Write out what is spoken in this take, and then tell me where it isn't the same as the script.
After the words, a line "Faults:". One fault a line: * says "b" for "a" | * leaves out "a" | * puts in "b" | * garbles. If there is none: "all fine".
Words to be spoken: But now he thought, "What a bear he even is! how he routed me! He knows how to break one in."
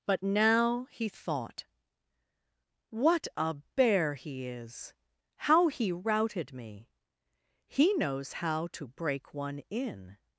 But now he thought, "What a bear he is! how he routed me! He knows how to break one in."
Faults:
* leaves out "even"